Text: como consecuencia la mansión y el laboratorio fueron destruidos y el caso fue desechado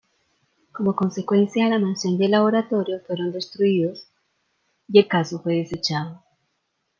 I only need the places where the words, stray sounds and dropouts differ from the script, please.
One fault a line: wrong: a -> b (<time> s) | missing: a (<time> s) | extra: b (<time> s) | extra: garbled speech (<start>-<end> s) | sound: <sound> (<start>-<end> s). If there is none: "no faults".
no faults